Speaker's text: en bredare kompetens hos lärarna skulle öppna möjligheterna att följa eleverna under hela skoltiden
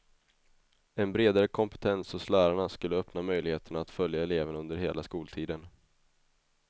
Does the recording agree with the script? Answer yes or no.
yes